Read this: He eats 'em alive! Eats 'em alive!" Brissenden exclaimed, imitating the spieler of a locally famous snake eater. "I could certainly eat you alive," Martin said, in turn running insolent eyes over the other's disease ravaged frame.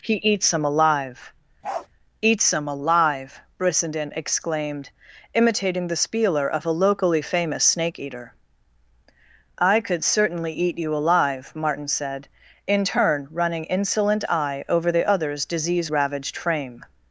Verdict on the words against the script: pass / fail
fail